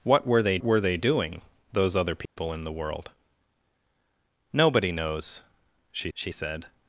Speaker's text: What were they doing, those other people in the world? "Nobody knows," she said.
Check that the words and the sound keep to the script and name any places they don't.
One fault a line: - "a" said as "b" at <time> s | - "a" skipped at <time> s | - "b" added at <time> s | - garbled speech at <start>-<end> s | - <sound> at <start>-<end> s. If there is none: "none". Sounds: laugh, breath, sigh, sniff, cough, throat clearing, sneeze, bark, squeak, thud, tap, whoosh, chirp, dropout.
- "were they" added at 0.6 s
- dropout at 2.3-2.4 s
- "she" added at 6.1 s